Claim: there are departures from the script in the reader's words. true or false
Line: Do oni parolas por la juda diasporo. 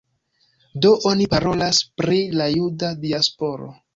true